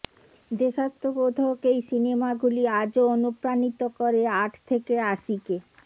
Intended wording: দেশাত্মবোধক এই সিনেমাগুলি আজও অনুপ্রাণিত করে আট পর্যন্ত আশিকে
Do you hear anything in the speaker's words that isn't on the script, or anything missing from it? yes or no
yes